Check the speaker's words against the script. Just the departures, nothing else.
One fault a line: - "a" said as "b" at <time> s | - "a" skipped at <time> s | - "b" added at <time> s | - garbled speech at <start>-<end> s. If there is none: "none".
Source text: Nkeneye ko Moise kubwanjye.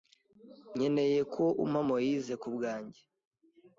- "umpa" added at 1.6 s